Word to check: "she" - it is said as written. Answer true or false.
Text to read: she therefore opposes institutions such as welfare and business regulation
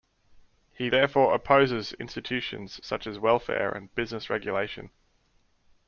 false